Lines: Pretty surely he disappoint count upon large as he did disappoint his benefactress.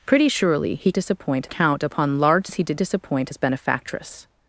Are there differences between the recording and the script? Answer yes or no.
no